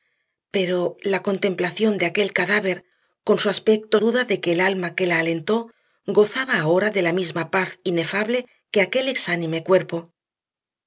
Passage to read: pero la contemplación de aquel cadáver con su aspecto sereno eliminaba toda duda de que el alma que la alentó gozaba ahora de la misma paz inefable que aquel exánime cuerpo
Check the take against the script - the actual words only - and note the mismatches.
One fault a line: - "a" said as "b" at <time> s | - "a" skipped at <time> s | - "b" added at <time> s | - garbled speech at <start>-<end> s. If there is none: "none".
- "sereno eliminaba toda" skipped at 4.0 s